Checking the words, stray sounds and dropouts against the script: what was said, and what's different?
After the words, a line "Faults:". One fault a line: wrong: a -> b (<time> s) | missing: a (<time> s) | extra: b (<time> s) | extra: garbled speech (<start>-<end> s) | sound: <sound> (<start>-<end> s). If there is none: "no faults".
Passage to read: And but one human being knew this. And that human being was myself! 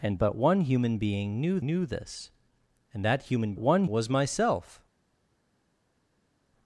And but one human being knew knew this. And that human one was myself!
Faults:
extra: knew (1.6 s)
wrong: being -> one (3.6 s)